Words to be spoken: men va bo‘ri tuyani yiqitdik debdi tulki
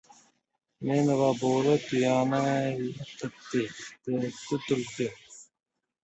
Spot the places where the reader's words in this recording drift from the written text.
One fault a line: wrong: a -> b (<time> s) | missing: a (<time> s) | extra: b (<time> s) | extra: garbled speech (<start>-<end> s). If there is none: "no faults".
no faults